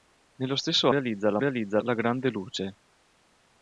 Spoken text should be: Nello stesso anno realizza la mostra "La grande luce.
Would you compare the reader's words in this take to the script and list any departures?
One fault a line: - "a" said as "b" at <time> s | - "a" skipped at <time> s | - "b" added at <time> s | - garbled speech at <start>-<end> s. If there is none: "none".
- "anno" skipped at 0.9 s
- "mostra" said as "realizza" at 1.4 s